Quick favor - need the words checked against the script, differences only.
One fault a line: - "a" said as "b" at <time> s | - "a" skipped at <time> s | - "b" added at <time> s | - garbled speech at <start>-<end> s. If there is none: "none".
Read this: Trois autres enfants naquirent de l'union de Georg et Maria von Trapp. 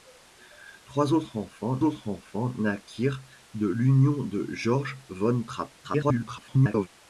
- "autres enfants" added at 1.8 s
- "et Maria" skipped at 4.9 s
- garbled speech at 5.8-6.9 s